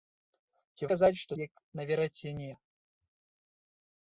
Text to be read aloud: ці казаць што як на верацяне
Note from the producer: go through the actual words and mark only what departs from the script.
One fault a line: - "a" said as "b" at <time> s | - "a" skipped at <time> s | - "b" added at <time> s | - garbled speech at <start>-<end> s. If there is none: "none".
none